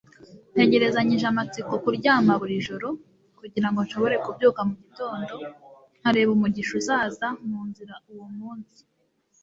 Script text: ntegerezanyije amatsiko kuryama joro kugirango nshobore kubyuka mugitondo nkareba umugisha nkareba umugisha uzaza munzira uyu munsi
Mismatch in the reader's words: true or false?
true